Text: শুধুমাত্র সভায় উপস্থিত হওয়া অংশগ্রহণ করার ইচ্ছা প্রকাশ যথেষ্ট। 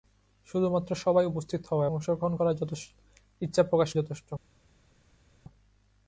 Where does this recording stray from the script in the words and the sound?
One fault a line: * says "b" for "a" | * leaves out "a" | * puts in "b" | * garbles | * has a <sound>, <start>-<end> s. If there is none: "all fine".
all fine